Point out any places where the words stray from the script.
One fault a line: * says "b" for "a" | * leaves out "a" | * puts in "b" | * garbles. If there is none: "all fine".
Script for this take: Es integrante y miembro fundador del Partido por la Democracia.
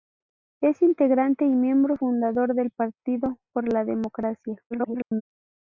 * garbles